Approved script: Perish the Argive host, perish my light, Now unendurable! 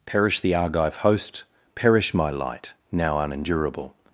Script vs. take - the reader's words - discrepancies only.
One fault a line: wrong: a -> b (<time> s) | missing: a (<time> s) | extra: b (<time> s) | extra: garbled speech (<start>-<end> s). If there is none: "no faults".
no faults